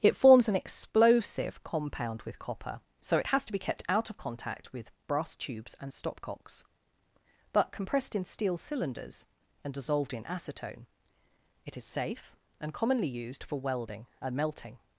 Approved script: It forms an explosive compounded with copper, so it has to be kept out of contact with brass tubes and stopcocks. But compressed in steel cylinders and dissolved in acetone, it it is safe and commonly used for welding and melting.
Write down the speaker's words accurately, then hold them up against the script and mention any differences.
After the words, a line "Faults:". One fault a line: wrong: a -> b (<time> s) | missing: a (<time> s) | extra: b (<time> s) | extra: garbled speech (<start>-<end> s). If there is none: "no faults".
It forms an explosive compound with copper, so it has to be kept out of contact with brass tubes and stopcocks. But compressed in steel cylinders and dissolved in acetone, it is safe and commonly used for welding and melting.
Faults:
wrong: compounded -> compound (1.6 s)
missing: it (11.8 s)